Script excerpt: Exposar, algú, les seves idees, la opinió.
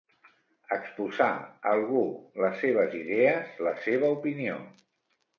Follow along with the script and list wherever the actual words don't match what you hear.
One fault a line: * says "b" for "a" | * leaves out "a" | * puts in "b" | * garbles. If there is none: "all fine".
* puts in "seva"